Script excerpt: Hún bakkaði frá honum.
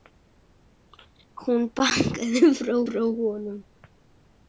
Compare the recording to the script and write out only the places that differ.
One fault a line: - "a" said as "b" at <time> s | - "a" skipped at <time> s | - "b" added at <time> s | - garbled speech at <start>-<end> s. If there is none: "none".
- "frá" added at 2.9 s